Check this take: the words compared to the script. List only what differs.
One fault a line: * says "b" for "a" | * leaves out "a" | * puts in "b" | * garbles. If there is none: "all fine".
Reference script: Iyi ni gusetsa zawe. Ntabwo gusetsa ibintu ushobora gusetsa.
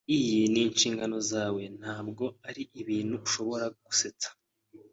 * says "inshingano" for "gusetsa"
* says "ari" for "gusetsa"